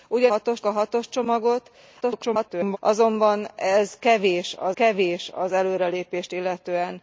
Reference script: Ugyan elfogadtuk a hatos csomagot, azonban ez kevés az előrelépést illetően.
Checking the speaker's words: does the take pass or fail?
fail